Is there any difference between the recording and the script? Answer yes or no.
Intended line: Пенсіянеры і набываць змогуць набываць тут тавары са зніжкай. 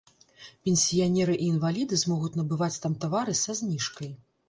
yes